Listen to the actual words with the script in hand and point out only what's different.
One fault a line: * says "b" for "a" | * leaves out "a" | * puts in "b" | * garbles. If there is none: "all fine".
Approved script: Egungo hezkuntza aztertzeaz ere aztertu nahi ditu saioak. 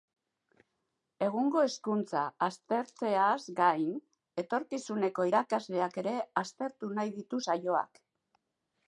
* puts in "gain etorkizuneko irakasleak"